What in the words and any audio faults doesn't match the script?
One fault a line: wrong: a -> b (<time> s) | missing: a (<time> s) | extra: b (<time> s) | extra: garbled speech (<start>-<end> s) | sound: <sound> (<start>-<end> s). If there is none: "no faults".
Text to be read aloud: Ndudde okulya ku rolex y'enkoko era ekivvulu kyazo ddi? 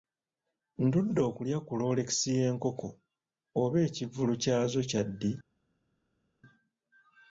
wrong: era -> oba (3.6 s)
extra: kya (4.9 s)